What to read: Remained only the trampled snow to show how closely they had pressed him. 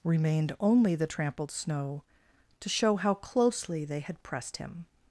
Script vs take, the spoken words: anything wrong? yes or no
no